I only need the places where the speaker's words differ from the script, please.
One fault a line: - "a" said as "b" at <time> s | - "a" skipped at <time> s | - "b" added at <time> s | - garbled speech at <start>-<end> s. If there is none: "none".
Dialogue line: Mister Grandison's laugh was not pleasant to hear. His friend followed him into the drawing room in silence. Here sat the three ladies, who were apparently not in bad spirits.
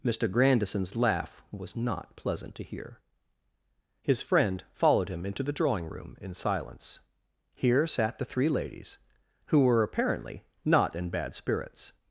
none